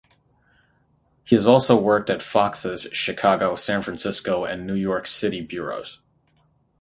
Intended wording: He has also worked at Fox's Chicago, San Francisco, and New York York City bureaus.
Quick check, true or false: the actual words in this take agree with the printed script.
false